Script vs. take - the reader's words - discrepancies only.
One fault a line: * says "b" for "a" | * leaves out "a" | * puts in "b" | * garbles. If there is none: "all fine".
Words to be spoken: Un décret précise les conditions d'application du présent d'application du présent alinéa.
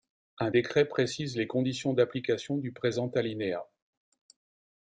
* leaves out "d'application du présent"